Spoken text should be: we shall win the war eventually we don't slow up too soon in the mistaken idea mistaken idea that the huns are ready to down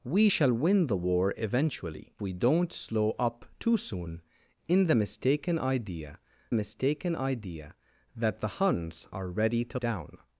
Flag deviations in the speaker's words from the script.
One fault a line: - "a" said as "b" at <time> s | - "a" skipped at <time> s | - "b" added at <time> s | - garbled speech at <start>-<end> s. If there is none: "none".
none